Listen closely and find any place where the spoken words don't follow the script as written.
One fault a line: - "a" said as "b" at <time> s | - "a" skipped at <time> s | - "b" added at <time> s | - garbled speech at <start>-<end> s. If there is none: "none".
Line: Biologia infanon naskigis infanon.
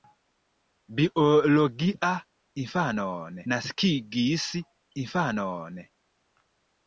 none